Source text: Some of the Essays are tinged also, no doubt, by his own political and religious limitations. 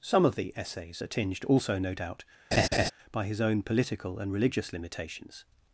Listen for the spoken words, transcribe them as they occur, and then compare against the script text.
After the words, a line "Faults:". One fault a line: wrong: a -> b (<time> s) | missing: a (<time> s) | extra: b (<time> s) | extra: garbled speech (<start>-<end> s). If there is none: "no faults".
Some of the Essays are tinged also, no doubt, by his own political and religious limitations.
Faults:
no faults